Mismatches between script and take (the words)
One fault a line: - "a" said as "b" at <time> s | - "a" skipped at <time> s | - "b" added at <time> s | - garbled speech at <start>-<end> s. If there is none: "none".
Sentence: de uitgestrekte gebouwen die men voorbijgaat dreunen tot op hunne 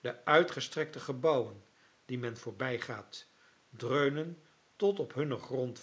none